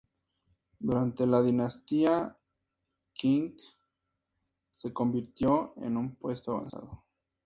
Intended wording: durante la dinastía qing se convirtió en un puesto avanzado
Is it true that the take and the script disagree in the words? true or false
false